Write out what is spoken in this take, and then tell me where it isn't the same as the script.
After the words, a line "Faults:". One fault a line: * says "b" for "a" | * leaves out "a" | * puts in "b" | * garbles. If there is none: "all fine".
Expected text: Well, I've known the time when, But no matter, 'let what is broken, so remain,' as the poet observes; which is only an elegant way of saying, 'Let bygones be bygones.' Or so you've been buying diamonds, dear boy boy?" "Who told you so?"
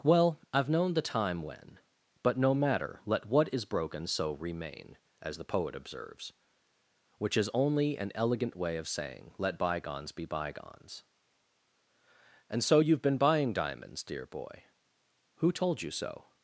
Well, I've known the time when, But no matter, 'let what is broken, so remain,' as the poet observes; which is only an elegant way of saying, 'Let bygones be bygones.' And so you've been buying diamonds, dear boy?" "Who told you so?"
Faults:
* says "And" for "Or"
* leaves out "boy"